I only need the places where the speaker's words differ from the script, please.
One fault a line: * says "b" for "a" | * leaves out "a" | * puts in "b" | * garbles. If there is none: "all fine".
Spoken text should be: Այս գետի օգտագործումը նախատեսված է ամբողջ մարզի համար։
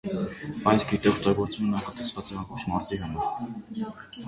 all fine